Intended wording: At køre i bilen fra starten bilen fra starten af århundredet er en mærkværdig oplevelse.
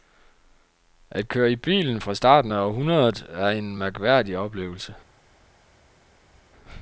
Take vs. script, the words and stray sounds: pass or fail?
fail